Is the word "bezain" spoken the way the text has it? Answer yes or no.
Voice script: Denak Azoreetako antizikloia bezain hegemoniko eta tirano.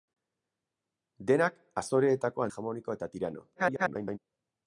no